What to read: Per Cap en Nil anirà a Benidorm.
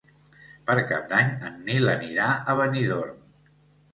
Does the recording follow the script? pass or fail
fail